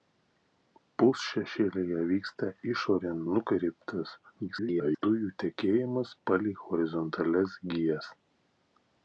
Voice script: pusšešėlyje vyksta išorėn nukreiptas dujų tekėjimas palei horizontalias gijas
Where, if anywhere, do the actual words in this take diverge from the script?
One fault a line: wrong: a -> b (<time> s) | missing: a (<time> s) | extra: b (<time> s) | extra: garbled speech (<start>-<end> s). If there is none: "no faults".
extra: garbled speech (4.5-5.0 s)